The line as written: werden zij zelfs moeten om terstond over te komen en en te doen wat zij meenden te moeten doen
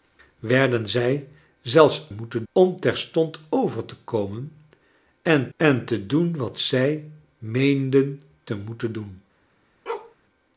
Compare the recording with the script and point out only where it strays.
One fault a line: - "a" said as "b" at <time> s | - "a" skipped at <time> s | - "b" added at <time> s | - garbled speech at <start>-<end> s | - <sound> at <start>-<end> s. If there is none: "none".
- bark at 9.9-10.2 s